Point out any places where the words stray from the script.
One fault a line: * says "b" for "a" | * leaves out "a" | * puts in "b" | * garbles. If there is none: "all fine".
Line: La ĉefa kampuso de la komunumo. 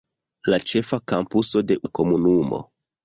all fine